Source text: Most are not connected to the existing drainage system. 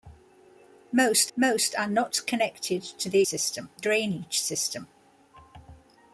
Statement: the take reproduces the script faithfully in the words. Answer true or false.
false